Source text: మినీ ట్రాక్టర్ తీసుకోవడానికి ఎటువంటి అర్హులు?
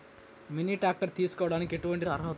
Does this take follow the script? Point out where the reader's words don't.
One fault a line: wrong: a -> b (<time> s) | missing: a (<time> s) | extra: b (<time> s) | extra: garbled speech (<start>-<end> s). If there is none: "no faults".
no faults